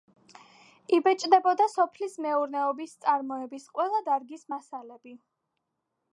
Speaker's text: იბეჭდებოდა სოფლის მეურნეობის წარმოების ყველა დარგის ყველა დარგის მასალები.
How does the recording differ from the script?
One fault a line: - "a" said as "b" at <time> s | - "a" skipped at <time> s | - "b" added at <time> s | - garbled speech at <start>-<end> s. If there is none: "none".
- "ყველა დარგის" skipped at 4.5 s